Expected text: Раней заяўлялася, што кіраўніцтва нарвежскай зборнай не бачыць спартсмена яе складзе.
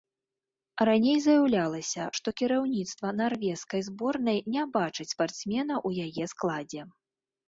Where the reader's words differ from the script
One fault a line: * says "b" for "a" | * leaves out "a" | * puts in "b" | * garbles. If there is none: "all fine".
* puts in "ў"